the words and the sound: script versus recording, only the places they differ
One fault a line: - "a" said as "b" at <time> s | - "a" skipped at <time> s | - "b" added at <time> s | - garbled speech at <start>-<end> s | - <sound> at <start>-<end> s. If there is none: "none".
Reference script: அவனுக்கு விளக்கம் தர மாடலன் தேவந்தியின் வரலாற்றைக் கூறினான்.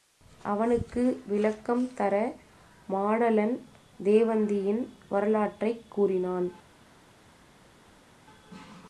none